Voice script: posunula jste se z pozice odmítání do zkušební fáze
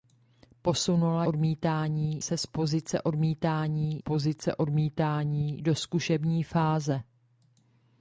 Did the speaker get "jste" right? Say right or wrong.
wrong